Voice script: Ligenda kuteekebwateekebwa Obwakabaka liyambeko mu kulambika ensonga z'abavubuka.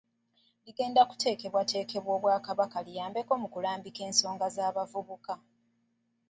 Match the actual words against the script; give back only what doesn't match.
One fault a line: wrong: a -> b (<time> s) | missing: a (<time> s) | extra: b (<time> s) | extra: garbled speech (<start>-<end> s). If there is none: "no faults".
no faults